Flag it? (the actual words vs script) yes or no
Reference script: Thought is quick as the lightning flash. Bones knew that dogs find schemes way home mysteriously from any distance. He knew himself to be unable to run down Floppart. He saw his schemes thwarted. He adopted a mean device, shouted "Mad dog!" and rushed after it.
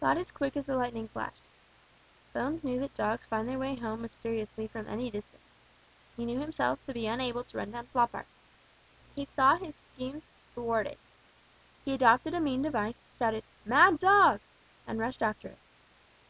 yes